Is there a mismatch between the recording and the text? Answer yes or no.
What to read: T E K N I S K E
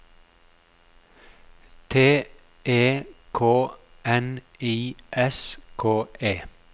no